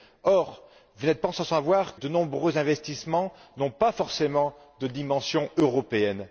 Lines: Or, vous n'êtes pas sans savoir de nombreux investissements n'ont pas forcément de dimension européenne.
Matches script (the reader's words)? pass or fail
pass